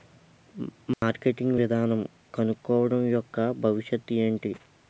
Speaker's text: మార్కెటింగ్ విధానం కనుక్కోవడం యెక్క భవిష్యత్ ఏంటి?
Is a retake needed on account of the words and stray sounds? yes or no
yes